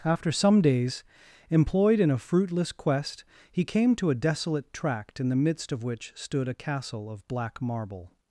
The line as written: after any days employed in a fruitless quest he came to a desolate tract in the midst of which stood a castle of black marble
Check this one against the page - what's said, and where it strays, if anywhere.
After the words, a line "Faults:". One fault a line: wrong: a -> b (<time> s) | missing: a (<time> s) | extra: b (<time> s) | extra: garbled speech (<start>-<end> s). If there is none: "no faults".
after some days employed in a fruitless quest he came to a desolate tract in the midst of which stood a castle of black marble
Faults:
wrong: any -> some (0.3 s)